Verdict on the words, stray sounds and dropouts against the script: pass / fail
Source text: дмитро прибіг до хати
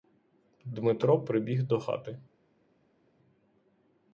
pass